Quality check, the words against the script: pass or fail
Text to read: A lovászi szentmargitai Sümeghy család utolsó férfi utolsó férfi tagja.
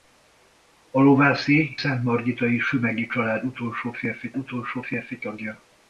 pass